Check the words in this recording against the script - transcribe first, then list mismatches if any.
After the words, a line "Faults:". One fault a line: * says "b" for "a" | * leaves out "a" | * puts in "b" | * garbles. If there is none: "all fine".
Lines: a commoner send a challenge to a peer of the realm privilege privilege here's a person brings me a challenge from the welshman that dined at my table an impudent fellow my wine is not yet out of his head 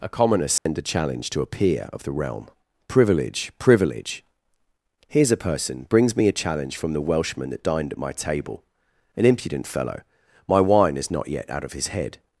a commoner send a challenge to a peer of the realm privilege privilege here's a person brings me a challenge from the welshman that dined at my table an impudent fellow my wine is not yet out of his head
Faults:
all fine